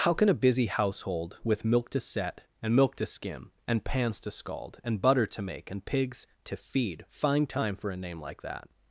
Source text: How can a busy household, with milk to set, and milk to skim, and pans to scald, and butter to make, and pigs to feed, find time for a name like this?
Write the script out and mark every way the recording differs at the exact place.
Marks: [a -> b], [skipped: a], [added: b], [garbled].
How can a busy household, with milk to set, and milk to skim, and pans to scald, and butter to make, and pigs to feed, find time for a name like [this? -> that]